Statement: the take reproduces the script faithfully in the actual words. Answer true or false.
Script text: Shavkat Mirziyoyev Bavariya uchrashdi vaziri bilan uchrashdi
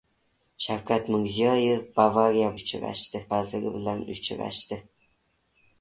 true